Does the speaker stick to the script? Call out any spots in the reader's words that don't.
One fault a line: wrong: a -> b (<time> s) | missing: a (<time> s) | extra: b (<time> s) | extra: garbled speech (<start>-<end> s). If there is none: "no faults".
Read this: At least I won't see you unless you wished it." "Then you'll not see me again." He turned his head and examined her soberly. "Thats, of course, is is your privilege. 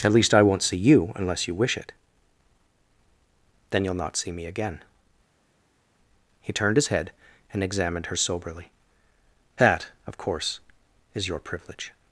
wrong: wished -> wish (1.5 s)
wrong: Thats -> That (9.6 s)
missing: is (11.3 s)